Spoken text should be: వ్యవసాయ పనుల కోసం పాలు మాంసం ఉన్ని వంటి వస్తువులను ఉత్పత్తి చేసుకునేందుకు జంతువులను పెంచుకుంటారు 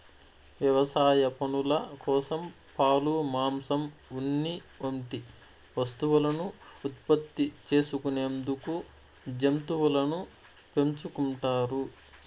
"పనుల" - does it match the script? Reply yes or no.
yes